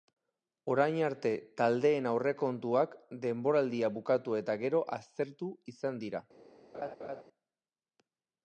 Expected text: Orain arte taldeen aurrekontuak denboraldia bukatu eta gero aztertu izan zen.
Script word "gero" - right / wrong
right